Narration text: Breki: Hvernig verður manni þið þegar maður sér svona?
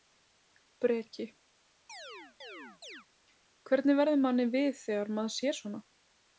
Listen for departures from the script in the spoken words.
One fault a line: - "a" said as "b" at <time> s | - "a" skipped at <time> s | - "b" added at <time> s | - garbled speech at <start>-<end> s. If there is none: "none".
- "þið" said as "við" at 4.6 s